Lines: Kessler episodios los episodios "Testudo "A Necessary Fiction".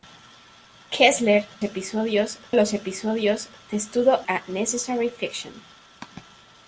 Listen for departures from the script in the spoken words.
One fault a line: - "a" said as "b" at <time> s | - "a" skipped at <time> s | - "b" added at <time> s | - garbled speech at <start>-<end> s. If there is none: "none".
none